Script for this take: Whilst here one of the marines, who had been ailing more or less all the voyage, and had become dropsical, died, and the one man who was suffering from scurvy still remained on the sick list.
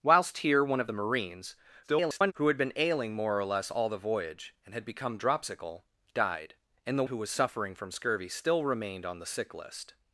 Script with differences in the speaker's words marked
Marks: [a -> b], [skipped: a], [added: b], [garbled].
Whilst here one of the marines, [garbled] who had been ailing more or less all the voyage, and had become dropsical, died, and the [skipped: one man] who was suffering from scurvy still remained on the sick list.